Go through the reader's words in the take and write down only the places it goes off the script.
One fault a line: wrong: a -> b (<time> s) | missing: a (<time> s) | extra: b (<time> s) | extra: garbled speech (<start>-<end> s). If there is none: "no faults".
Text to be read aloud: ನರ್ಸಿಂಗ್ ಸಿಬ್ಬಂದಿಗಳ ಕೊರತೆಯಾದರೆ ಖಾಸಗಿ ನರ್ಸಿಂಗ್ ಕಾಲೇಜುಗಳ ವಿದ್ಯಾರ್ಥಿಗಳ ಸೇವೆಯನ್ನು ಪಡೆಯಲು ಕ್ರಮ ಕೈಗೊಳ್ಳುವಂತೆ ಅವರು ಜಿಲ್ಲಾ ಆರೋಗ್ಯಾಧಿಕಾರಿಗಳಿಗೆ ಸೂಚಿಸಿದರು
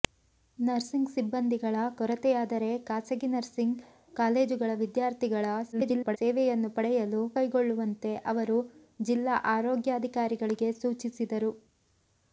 extra: garbled speech (5.7-6.2 s)
missing: ಕ್ರಮ (7.2 s)